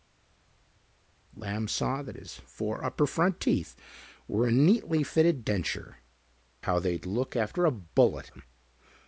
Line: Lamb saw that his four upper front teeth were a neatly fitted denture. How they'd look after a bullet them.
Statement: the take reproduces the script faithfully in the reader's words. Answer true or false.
true